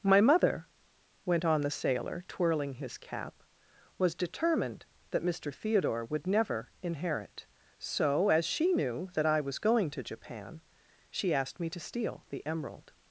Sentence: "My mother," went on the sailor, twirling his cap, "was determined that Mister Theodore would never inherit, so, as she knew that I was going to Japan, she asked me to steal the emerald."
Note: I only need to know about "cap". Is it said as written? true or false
true